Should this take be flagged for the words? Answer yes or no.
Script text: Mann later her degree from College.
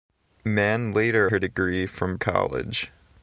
no